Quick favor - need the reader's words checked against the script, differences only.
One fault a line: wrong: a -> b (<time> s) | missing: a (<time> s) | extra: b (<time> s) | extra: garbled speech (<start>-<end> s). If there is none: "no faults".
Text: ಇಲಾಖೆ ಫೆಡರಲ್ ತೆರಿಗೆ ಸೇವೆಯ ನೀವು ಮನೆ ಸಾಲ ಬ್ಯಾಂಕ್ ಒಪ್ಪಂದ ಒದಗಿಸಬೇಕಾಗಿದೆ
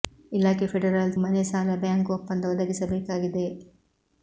missing: ತೆರಿಗೆ ಸೇವೆಯ ನೀವು (1.1 s)